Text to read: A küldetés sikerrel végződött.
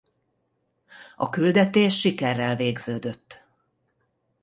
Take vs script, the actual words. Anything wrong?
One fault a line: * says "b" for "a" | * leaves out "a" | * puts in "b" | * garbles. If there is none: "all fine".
all fine